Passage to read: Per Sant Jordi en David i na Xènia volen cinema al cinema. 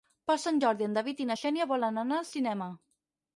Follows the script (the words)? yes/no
no